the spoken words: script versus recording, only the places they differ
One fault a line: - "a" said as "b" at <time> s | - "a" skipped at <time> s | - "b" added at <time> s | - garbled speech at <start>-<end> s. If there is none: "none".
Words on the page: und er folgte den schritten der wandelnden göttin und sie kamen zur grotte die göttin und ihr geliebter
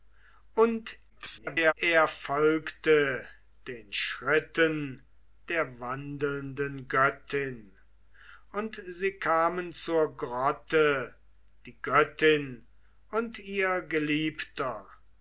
- garbled speech at 1.1-1.7 s